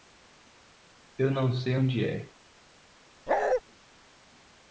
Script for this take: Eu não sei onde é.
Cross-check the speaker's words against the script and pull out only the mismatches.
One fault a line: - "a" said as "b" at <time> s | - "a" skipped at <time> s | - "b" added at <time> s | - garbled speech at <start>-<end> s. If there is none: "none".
none